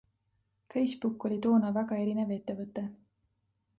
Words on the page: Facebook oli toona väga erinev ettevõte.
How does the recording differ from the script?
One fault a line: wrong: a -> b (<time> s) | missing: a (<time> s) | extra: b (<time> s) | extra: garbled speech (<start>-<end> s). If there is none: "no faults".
no faults